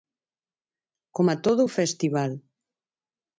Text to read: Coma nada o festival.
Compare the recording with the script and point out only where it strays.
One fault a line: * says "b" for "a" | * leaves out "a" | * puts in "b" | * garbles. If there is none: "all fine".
* says "todo" for "nada"